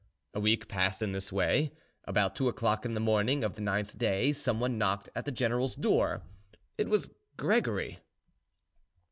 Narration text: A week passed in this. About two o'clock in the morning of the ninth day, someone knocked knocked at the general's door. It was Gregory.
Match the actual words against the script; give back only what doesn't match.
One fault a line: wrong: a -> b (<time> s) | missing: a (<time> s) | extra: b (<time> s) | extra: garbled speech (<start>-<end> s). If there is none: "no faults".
extra: way (1.3 s)
missing: knocked (5.1 s)